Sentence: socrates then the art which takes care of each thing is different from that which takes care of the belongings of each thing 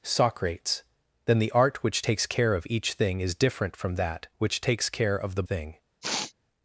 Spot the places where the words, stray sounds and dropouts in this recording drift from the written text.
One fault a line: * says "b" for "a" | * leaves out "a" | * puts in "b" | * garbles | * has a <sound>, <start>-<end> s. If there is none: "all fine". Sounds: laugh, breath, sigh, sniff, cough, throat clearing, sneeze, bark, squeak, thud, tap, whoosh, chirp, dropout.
* leaves out "belongings of each"
* has a sniff, 6.0-6.3 s